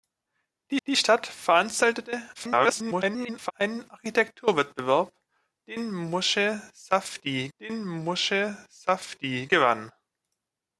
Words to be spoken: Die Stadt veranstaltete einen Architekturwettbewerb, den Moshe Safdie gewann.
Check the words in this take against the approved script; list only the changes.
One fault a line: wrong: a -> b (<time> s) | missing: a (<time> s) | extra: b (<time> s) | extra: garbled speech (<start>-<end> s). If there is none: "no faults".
extra: die (0.9 s)
extra: garbled speech (2.3-3.5 s)
extra: den Moshe Safdie (7.6 s)